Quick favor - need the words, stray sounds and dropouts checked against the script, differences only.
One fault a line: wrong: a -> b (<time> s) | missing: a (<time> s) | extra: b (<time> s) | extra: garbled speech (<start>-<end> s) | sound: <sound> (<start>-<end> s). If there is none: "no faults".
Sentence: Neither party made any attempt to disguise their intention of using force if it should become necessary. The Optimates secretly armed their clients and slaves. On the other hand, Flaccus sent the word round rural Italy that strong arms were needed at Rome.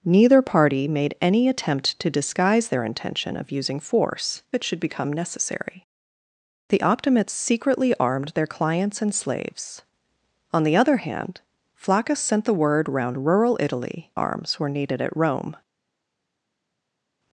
missing: if (4.4 s)
missing: that strong (14.1 s)